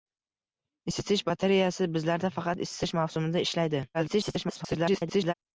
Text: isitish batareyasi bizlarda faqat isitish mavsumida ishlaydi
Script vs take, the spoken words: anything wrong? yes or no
yes